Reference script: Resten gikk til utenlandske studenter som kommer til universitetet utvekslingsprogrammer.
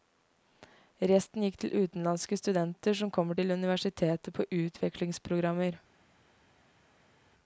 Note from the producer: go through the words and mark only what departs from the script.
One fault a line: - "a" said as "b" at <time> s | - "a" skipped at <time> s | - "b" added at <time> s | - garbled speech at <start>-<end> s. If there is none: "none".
- "på" added at 4.3 s